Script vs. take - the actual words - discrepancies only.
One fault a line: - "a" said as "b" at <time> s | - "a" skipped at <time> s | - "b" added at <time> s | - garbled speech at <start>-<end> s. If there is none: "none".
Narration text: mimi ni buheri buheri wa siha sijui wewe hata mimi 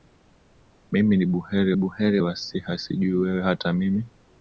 none